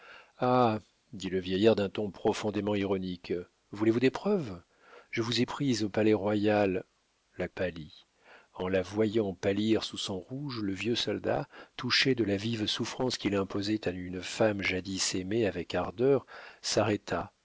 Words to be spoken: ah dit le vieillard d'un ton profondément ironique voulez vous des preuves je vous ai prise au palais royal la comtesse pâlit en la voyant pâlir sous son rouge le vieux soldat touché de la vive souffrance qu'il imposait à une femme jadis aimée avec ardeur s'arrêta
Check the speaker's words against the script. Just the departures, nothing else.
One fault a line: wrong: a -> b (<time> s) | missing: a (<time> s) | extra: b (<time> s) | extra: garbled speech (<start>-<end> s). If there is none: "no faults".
missing: comtesse (7.5 s)